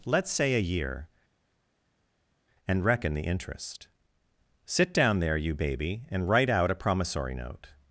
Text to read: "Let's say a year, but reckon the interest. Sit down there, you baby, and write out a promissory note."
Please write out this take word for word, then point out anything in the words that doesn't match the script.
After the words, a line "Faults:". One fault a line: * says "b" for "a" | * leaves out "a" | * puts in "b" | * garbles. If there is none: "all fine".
"Let's say a year, and reckon the interest. Sit down there, you baby, and write out a promissory note."
Faults:
* says "and" for "but"